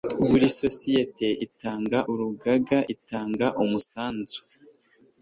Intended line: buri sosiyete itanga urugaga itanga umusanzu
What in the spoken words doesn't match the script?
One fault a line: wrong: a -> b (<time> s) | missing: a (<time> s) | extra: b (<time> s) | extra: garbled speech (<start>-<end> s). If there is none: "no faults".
no faults